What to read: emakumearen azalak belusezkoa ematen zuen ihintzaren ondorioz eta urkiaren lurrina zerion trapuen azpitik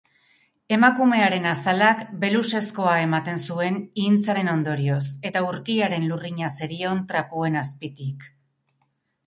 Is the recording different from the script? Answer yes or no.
no